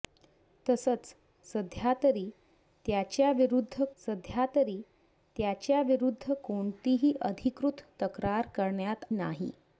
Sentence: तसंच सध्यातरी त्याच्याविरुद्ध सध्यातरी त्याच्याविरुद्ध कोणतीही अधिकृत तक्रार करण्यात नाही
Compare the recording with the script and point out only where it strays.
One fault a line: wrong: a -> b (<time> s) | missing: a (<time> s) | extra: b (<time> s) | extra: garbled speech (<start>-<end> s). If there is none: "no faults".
no faults